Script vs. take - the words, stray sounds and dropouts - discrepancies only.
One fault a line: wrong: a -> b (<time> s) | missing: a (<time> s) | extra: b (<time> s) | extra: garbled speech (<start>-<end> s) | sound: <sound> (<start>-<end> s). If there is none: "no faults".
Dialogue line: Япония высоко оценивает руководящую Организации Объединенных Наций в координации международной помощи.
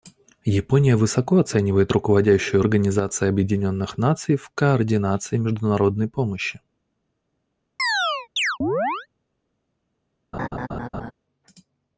sound: chirp (7.8-9.1 s)
sound: laugh (10.3-11.1 s)